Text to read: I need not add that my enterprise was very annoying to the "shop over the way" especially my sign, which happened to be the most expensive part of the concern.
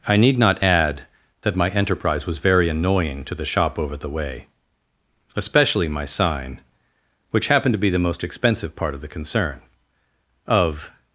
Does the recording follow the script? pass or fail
fail